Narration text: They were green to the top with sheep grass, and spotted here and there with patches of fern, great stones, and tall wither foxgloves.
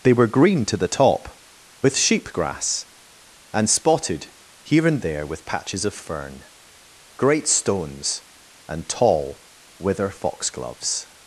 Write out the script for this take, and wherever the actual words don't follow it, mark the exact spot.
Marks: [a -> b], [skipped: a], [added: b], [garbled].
They were green to the top with sheep grass, and spotted here and there with patches of fern, great stones, and tall wither foxgloves.